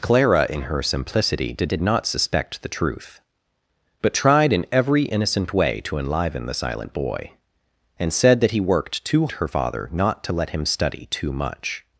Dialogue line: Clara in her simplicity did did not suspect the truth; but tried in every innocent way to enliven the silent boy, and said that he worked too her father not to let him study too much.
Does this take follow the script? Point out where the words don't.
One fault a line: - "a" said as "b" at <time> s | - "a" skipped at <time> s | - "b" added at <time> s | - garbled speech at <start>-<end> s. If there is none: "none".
none